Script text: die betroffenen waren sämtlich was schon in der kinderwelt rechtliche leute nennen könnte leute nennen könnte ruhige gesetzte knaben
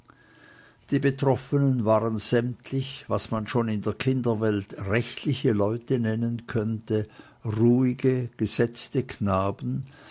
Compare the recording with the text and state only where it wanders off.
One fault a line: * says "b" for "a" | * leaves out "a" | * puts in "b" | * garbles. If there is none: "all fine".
* puts in "man"
* leaves out "leute nennen könnte"